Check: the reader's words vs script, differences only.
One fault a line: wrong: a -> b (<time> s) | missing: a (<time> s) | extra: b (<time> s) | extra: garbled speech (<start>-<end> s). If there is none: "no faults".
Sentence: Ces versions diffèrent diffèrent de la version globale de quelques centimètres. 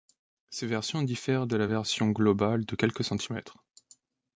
missing: diffèrent (1.4 s)